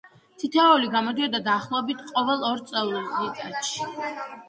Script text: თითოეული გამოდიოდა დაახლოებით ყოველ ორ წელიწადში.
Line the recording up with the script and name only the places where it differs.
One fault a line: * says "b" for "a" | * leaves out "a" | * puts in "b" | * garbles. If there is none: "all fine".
all fine